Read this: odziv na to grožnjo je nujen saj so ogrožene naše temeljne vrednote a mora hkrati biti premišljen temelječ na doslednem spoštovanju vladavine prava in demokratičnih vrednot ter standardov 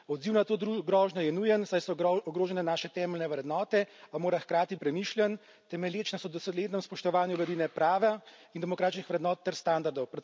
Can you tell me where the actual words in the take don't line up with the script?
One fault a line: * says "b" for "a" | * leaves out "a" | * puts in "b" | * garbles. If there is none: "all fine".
* leaves out "biti"